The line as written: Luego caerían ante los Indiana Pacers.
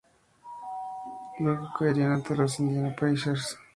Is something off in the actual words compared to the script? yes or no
no